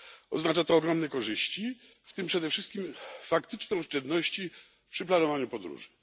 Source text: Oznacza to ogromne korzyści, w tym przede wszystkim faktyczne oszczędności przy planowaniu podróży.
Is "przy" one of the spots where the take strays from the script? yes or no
no